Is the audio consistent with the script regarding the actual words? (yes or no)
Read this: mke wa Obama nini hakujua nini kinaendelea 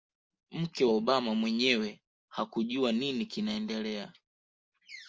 no